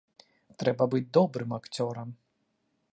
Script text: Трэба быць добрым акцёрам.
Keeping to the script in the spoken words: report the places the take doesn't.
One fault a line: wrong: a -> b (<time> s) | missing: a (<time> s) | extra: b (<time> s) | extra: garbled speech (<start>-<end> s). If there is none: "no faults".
no faults